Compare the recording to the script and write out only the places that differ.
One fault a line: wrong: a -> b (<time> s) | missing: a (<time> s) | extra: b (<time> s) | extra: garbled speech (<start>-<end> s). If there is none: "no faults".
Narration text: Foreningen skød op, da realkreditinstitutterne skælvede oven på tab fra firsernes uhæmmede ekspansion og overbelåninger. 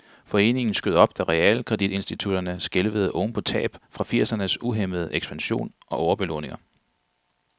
no faults